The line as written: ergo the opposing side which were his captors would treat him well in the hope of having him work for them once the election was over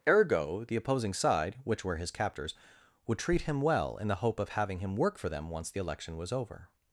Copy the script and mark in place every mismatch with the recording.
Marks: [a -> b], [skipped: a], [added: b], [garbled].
ergo the opposing side which were his captors would treat him well in the hope of having him work for them once the election was over